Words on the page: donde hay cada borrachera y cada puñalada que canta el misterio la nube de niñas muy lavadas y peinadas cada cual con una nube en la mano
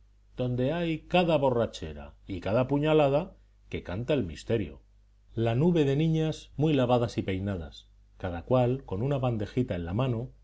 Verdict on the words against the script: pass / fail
fail